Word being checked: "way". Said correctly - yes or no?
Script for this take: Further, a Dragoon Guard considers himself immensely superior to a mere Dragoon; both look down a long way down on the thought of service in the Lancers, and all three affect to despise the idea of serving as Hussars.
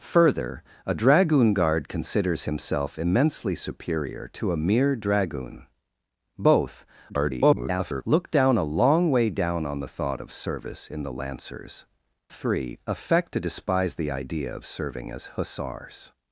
yes